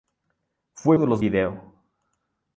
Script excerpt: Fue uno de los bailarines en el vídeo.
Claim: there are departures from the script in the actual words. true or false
true